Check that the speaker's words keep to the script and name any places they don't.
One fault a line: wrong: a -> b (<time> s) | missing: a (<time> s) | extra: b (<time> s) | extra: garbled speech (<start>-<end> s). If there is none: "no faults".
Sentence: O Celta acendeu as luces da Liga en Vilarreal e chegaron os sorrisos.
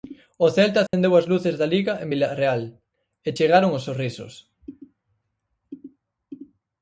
no faults